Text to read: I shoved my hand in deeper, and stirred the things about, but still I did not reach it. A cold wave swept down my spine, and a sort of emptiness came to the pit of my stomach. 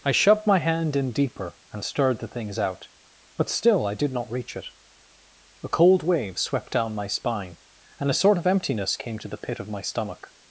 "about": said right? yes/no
no